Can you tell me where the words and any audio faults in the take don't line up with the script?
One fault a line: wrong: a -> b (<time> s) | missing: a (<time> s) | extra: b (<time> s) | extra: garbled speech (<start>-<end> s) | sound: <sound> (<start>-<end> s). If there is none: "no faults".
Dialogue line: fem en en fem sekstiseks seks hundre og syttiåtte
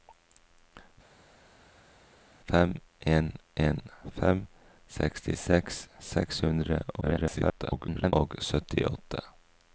extra: garbled speech (7.0-8.1 s)